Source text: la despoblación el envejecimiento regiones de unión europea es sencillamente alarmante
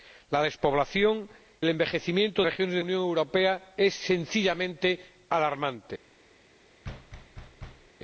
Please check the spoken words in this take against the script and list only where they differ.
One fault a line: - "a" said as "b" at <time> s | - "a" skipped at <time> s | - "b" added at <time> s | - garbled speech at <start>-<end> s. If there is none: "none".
none